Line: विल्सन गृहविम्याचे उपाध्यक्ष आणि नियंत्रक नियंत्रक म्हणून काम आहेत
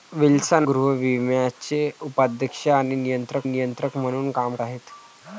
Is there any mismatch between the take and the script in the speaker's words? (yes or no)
no